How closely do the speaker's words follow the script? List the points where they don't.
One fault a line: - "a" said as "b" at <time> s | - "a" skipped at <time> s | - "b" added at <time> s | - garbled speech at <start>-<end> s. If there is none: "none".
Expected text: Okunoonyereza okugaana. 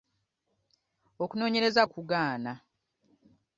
none